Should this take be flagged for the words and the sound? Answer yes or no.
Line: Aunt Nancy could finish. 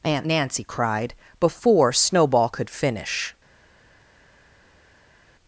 yes